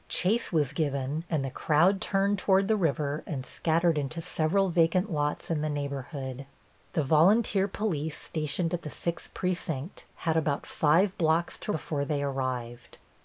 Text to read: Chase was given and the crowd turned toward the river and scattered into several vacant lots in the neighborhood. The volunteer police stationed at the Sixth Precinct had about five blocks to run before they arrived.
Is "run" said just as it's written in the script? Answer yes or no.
no